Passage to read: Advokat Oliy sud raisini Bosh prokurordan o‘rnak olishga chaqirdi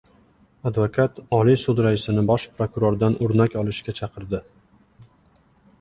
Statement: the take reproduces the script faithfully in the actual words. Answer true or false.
true